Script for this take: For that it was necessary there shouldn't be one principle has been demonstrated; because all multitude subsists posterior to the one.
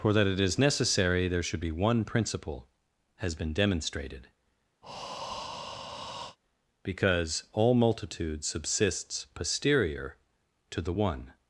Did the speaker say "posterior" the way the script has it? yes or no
yes